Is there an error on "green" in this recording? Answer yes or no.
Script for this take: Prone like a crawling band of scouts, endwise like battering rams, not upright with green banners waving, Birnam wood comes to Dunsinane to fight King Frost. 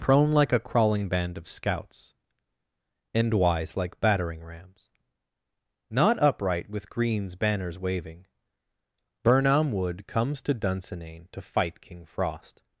yes